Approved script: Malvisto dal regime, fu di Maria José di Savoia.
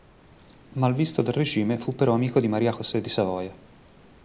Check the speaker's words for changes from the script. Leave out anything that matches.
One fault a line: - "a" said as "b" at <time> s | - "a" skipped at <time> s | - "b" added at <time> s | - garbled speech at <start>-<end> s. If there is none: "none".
- "però amico" added at 1.9 s